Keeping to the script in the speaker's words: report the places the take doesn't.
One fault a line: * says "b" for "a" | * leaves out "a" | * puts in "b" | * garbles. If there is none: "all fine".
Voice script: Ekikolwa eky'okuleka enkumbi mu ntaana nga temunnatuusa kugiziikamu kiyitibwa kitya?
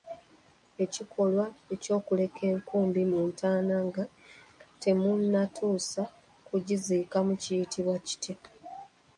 all fine